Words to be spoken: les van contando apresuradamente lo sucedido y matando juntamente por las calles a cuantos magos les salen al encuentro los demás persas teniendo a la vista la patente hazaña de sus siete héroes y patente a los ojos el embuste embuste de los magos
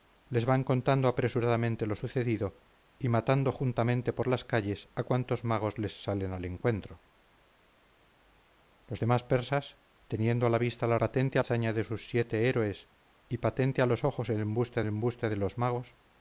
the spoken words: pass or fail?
pass